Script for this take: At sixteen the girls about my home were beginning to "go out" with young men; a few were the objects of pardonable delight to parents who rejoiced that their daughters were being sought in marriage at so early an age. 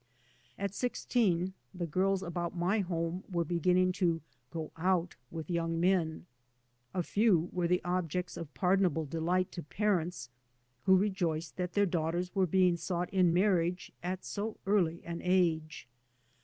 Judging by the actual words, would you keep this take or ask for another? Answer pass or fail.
pass